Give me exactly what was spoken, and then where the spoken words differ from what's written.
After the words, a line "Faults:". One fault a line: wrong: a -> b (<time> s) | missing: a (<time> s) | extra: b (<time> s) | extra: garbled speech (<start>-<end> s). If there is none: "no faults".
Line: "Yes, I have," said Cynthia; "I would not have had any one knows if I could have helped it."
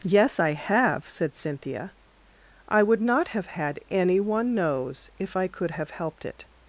"Yes, I have," said Cynthia; "I would not have had any one knows if I could have helped it."
Faults:
no faults